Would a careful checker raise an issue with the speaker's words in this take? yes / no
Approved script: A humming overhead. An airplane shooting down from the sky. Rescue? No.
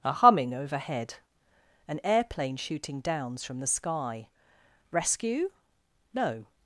yes